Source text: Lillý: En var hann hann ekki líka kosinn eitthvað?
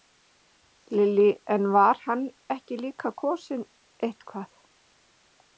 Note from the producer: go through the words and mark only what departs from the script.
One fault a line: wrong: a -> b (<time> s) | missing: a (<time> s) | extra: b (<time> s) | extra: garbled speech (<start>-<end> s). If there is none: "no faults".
missing: hann (2.2 s)